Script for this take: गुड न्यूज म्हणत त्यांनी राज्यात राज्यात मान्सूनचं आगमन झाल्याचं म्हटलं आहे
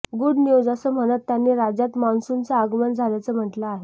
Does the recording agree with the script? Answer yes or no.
no